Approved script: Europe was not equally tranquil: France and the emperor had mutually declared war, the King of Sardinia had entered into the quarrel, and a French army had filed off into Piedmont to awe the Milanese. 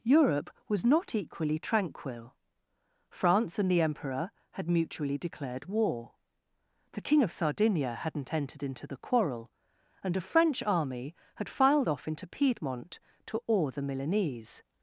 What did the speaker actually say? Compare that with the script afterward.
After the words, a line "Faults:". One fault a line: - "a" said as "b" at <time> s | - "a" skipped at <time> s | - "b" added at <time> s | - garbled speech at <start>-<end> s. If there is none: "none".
Europe was not equally tranquil: France and the emperor had mutually declared war, the King of Sardinia hadn't entered into the quarrel, and a French army had filed off into Piedmont to awe the Milanese.
Faults:
- "had" said as "hadn't" at 8.0 s